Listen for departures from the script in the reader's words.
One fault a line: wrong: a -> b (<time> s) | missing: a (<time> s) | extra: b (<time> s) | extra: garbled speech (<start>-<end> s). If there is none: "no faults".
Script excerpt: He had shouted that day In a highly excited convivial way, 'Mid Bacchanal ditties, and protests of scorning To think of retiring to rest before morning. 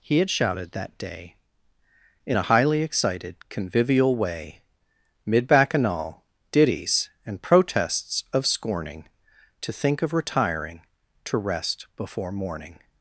no faults